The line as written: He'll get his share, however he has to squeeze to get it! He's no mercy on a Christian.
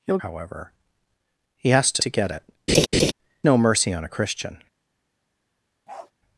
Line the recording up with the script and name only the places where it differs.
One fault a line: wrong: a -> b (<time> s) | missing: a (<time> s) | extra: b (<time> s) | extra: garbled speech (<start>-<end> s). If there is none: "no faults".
missing: get his share (0.2 s)
missing: squeeze (2.0 s)
missing: He's (2.4 s)